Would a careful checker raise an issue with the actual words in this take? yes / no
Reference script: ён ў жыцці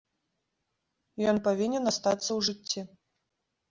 yes